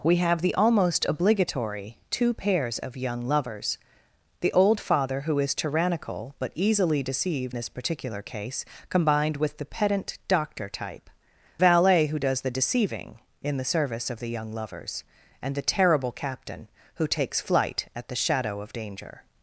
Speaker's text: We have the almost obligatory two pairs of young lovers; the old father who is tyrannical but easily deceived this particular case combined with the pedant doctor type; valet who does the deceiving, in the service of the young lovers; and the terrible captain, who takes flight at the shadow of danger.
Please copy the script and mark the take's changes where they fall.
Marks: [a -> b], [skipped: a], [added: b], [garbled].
We have the almost obligatory two pairs of young lovers; the old father who is tyrannical but easily deceived this particular case combined with the pedant doctor type; valet who does the deceiving, in the service of the young lovers; and the terrible captain, who takes flight at the shadow of danger.